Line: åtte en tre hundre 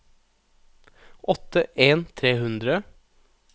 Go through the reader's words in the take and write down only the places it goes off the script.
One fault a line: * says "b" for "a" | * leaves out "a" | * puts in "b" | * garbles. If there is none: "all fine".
all fine